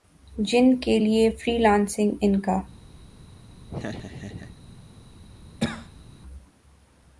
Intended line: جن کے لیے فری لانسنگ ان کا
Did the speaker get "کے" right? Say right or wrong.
right